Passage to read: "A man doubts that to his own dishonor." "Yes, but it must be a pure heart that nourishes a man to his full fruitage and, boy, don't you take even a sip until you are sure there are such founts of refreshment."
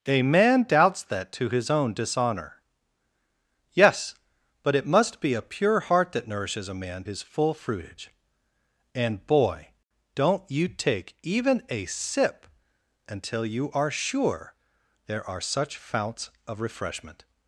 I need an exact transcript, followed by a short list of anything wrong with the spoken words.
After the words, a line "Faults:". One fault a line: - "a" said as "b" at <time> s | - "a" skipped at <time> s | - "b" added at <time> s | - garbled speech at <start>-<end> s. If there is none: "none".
"A man doubts that to his own dishonor." "Yes, but it must be a pure heart that nourishes a man his full fruitage and, boy, don't you take even a sip until you are sure there are such founts of refreshment."
Faults:
- "to" skipped at 7.0 s